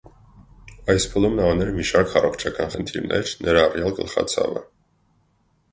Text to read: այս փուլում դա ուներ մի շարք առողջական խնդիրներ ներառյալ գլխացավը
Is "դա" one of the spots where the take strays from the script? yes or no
yes